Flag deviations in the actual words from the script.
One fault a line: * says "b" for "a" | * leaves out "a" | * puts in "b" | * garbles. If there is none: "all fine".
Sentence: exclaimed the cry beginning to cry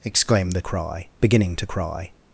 all fine